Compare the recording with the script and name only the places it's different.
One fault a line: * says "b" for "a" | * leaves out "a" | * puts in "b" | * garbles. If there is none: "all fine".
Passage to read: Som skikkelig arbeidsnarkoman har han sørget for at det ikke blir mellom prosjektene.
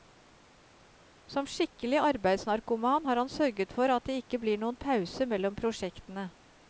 * puts in "noen pause"